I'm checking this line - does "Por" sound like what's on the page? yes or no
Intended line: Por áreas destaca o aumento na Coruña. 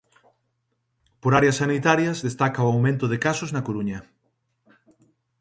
yes